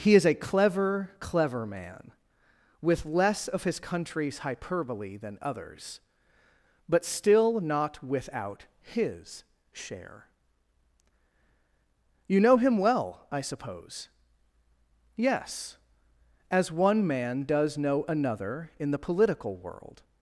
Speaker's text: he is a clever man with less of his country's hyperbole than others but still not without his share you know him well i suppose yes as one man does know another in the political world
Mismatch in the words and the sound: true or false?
true